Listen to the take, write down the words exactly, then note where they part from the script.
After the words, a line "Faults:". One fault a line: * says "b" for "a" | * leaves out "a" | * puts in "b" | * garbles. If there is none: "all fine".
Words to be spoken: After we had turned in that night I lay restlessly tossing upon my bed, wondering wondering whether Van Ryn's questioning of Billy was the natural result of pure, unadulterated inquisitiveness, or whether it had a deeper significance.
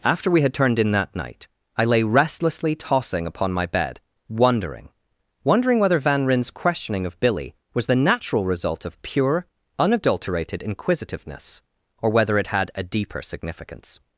After we had turned in that night I lay restlessly tossing upon my bed, wondering wondering whether Van Ryn's questioning of Billy was the natural result of pure, unadulterated inquisitiveness, or whether it had a deeper significance.
Faults:
all fine